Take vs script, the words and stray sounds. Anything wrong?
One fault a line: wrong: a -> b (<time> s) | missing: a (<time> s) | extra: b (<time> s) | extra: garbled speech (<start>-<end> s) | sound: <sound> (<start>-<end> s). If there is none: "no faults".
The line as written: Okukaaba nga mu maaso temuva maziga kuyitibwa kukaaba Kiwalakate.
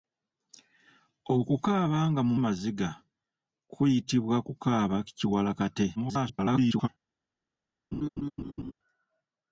missing: maaso temuva (2.4 s)
extra: garbled speech (6.0-6.9 s)
sound: laugh (7.9-8.7 s)